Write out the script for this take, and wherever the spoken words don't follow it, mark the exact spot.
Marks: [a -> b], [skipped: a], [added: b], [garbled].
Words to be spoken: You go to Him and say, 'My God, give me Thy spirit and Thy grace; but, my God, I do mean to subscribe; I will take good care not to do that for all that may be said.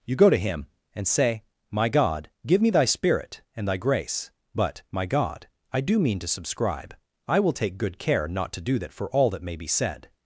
You go to Him and say, 'My God, give me Thy spirit and Thy grace; but, my God, I do mean to subscribe; I will take good care not to do that for all that may be said.